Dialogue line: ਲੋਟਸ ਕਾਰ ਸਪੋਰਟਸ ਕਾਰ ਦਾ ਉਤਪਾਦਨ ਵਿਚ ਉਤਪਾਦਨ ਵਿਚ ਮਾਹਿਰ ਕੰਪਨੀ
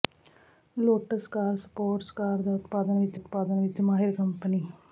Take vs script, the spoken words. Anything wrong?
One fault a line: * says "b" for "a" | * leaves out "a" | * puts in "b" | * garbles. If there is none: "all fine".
all fine